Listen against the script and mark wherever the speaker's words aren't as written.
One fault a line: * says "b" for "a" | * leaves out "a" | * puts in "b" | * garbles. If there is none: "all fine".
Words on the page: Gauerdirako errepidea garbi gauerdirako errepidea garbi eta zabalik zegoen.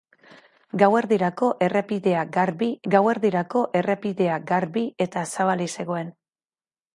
all fine